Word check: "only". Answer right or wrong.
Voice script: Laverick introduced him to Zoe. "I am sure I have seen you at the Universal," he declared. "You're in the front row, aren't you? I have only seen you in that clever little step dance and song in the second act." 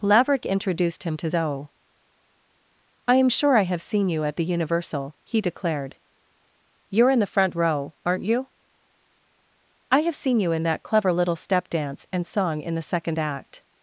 wrong